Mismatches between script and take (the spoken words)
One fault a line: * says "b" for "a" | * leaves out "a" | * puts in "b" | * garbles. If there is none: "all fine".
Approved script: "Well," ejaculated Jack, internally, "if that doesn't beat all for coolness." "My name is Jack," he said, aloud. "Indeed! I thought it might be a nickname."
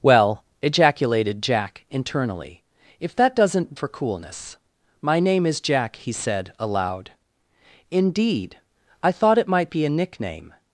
* leaves out "beat all"